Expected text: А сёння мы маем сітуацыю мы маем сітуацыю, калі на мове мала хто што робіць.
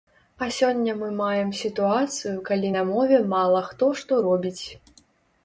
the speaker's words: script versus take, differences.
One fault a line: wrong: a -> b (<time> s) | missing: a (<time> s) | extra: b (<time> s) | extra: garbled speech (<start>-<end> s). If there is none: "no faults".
missing: мы маем сітуацыю (2.3 s)